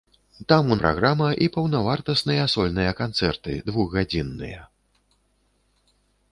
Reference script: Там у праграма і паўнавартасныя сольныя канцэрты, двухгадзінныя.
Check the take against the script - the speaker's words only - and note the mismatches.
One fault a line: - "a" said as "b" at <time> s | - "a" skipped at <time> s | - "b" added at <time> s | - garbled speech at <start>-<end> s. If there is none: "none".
none